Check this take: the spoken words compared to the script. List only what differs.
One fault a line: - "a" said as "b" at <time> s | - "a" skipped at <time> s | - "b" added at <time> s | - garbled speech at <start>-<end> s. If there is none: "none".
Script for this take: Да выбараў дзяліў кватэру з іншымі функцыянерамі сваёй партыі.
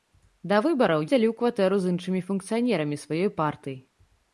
none